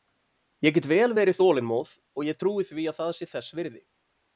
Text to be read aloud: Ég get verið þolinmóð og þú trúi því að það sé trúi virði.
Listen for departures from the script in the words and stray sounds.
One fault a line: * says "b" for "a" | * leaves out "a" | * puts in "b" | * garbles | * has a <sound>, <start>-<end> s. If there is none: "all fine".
* puts in "vel"
* says "ég" for "þú"
* says "þess" for "trúi"